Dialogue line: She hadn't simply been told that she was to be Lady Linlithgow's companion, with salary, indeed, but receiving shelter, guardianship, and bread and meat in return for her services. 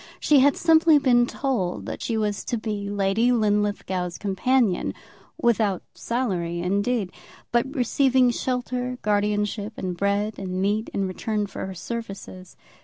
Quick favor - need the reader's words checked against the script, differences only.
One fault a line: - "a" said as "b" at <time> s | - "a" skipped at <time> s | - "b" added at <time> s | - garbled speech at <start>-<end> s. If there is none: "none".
- "hadn't" said as "had" at 0.4 s
- "with" said as "without" at 5.4 s